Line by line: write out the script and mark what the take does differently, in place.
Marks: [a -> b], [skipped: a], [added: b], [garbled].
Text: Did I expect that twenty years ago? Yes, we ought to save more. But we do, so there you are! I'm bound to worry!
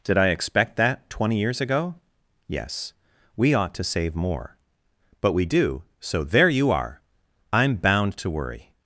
Did I expect that twenty years ago? Yes, we ought to save more. But we do, so there you are! I'm bound to worry!